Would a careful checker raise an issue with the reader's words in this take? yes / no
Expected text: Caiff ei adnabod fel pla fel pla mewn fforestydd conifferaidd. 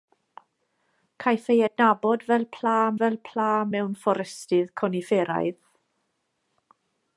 no